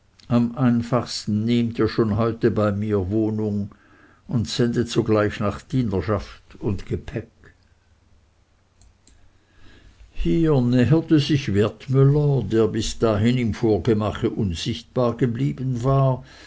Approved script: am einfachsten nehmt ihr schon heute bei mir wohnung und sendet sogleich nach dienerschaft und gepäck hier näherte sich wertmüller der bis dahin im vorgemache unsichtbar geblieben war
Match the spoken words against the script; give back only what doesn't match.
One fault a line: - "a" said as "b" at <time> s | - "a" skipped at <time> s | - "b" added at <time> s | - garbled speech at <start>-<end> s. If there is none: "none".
none